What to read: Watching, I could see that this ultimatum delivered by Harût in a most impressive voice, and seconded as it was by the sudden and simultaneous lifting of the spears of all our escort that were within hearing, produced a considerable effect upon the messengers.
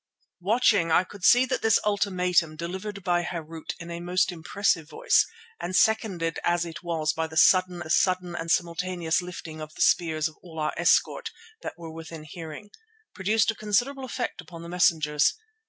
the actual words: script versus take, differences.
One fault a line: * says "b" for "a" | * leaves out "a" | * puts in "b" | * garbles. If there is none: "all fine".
* puts in "the sudden"